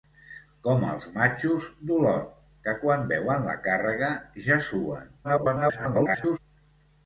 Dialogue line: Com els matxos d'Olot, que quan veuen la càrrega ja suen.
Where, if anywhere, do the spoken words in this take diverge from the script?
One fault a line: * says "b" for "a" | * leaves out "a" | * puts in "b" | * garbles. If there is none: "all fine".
* garbles